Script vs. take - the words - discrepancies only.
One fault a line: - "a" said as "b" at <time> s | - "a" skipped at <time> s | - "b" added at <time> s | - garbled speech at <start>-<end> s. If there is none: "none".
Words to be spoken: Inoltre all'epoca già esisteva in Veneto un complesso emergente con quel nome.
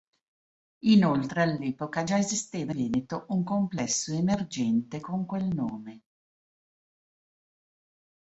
- "in" skipped at 2.7 s